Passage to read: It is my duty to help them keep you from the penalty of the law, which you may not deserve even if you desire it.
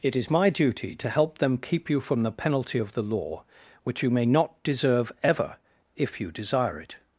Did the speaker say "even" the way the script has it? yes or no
no